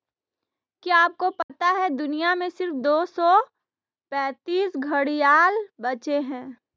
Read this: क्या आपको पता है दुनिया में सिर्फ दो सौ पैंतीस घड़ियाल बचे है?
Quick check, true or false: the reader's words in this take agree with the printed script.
true